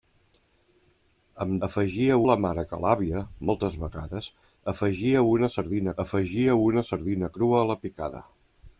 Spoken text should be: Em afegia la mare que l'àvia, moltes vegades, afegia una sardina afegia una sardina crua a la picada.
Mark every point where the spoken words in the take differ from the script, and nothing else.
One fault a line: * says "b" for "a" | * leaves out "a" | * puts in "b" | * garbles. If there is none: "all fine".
all fine